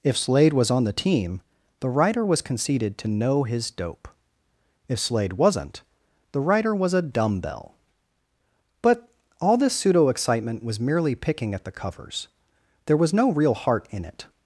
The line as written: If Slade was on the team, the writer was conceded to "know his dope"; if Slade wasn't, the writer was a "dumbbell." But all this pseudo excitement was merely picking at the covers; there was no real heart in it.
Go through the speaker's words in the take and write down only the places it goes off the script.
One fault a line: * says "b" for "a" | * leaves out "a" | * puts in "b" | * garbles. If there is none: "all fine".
all fine